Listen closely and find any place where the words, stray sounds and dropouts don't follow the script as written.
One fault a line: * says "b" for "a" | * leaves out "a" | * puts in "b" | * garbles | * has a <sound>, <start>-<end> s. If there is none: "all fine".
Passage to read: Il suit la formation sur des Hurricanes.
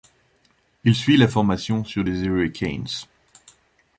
all fine